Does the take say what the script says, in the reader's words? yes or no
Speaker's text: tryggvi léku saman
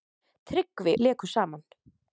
yes